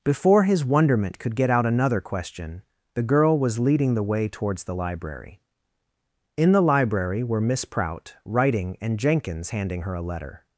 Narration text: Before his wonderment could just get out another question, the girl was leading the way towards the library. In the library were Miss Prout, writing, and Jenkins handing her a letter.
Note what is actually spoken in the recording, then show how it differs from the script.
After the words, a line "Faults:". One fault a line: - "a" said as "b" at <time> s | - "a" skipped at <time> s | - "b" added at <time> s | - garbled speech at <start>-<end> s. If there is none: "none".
Before his wonderment could get out another question, the girl was leading the way towards the library. In the library were Miss Prout, writing, and Jenkins handing her a letter.
Faults:
- "just" skipped at 1.4 s